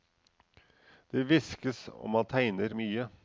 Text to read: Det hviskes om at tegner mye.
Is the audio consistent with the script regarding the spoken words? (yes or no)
yes